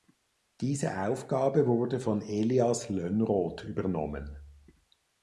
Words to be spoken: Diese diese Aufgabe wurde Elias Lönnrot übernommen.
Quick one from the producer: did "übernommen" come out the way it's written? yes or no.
yes